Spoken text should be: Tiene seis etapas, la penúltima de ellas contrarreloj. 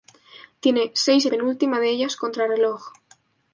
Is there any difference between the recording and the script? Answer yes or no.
yes